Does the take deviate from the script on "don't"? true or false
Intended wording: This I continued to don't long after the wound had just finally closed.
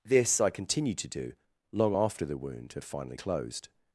true